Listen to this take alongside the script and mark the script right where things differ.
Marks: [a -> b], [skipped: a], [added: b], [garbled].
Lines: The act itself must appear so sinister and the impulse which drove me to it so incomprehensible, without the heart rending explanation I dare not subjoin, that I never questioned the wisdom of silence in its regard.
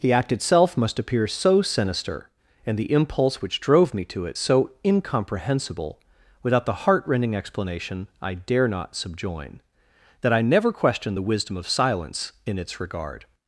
The act itself must appear so sinister and the impulse which drove me to it so incomprehensible, without the heart rending explanation I dare not subjoin, that I never questioned the wisdom of silence in its regard.